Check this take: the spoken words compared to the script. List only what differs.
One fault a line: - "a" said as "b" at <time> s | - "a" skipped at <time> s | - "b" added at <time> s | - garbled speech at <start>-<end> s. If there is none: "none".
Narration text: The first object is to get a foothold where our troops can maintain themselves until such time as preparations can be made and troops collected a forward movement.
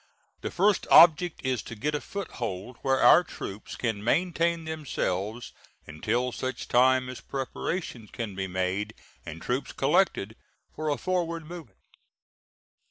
- "for" added at 10.7 s